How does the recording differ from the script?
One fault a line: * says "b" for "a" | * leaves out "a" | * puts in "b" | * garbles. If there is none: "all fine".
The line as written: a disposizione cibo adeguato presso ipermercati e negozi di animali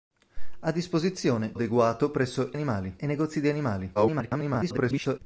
* leaves out "cibo"
* says "animali" for "ipermercati"
* garbles